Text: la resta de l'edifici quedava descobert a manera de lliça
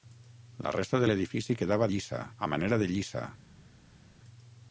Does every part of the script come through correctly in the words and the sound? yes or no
no